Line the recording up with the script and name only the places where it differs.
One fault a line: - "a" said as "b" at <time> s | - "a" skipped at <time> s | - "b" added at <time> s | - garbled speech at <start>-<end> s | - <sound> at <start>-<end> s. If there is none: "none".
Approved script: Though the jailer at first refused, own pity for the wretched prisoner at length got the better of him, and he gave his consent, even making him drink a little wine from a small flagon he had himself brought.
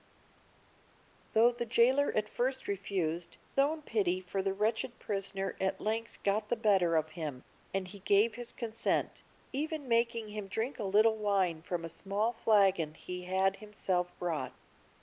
none